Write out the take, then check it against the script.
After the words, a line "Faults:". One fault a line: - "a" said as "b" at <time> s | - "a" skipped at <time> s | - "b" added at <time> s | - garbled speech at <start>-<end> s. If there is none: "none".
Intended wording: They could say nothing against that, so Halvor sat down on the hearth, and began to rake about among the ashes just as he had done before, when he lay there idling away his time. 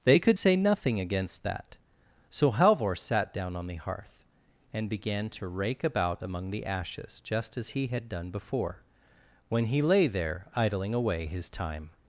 They could say nothing against that, so Halvor sat down on the hearth, and began to rake about among the ashes just as he had done before, when he lay there idling away his time.
Faults:
none